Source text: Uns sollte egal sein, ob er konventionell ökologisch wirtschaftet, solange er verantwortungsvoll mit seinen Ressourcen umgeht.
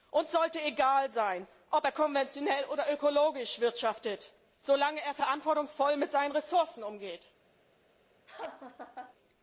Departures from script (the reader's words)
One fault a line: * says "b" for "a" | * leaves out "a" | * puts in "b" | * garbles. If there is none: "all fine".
* puts in "oder"